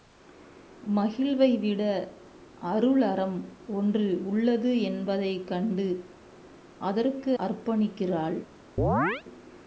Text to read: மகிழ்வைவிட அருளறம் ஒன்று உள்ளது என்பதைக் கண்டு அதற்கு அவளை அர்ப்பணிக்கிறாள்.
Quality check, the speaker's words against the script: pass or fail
fail